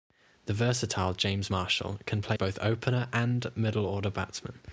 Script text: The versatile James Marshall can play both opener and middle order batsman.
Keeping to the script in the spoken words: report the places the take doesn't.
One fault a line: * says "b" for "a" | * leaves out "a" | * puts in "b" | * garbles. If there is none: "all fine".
all fine